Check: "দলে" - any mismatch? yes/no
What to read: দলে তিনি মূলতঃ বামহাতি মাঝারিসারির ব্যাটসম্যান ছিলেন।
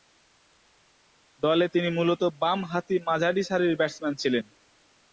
no